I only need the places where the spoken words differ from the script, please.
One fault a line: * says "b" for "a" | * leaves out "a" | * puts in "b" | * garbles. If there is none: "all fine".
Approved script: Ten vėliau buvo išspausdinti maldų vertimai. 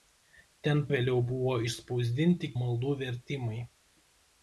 all fine